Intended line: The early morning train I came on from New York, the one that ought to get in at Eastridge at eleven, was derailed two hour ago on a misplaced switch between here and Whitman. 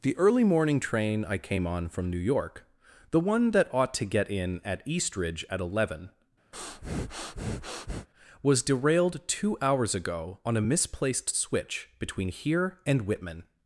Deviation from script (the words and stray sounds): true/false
true